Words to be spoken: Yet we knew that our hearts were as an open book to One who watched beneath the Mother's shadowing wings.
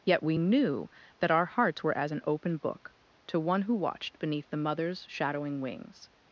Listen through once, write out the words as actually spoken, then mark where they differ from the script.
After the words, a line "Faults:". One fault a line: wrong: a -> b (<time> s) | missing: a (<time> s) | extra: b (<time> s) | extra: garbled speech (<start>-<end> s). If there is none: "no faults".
Yet we knew that our hearts were as an open book to One who watched beneath the Mother's shadowing wings.
Faults:
no faults